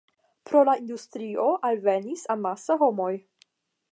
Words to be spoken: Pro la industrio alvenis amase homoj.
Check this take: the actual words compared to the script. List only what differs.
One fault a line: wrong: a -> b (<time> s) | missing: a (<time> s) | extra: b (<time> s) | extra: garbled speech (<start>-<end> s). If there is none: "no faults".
no faults